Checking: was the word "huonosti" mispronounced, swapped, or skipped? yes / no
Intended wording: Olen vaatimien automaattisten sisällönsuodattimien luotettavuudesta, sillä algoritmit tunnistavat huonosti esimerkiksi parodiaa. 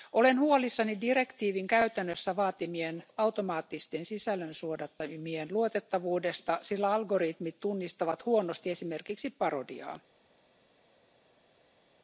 no